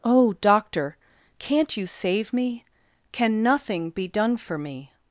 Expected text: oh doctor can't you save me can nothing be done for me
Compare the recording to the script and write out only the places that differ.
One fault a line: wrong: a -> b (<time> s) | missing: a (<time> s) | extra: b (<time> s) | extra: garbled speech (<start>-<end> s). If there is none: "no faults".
no faults